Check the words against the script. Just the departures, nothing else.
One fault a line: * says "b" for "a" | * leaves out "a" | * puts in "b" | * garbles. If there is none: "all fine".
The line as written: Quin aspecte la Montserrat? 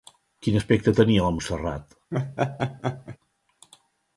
* puts in "tenia"